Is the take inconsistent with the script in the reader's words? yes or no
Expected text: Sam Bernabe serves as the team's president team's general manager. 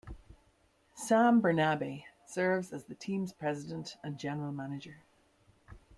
yes